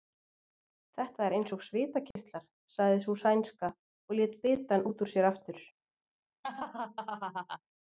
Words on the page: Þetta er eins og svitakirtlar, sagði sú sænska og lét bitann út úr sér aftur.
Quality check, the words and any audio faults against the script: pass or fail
fail